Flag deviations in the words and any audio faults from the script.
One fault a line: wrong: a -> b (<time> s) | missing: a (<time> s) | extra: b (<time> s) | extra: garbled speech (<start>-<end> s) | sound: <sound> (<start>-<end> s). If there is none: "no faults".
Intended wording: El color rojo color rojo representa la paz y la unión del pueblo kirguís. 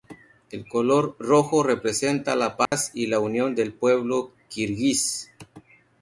missing: color rojo (1.6 s)
sound: dropout (2.7-2.7 s)